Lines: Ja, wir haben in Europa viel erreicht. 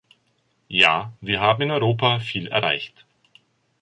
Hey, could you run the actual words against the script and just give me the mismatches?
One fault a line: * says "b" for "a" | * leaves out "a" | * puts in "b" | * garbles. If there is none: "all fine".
all fine